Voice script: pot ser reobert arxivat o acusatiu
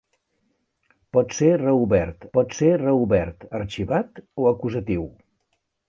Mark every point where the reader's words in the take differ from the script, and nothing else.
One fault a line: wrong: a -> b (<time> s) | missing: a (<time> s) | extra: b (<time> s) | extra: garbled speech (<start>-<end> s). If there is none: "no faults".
extra: pot ser reobert (2.4 s)